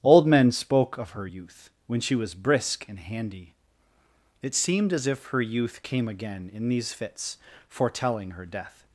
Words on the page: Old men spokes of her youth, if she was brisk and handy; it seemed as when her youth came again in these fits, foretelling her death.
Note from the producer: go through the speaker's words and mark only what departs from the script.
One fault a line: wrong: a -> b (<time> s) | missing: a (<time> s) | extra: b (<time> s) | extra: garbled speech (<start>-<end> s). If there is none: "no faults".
wrong: spokes -> spoke (0.5 s)
wrong: if -> when (1.9 s)
wrong: when -> if (5.1 s)